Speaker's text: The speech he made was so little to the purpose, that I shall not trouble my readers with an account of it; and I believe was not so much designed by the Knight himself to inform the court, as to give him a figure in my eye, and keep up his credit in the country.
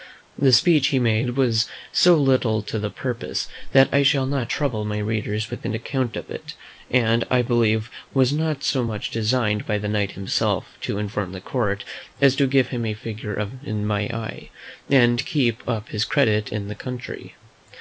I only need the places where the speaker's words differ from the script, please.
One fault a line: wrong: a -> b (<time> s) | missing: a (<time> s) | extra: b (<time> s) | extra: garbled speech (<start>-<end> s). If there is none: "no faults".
no faults